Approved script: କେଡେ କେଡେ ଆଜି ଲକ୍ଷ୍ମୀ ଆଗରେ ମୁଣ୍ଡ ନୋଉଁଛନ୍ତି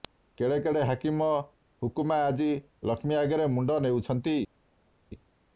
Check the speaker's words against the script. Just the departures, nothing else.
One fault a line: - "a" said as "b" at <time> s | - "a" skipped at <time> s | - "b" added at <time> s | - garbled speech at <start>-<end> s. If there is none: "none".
- "ହାକିମ ହୁକୁମା" added at 0.8 s